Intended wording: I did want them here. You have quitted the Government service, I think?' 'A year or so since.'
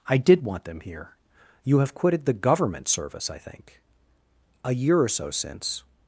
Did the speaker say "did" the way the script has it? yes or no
yes